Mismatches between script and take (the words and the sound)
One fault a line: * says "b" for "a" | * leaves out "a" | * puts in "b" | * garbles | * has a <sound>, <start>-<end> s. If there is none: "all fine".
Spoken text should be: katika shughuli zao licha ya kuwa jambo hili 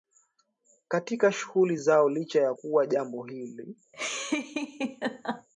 * has a laugh, 3.9-5.5 s